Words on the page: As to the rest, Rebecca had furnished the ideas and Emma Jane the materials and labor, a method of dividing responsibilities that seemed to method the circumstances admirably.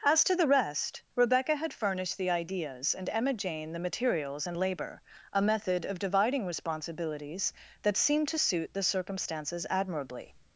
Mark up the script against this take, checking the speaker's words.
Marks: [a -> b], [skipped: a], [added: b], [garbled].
As to the rest, Rebecca had furnished the ideas and Emma Jane the materials and labor, a method of dividing responsibilities that seemed to [method -> suit] the circumstances admirably.